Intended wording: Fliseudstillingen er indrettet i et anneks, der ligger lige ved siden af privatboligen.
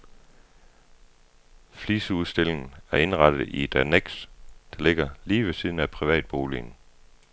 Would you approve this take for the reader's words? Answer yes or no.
yes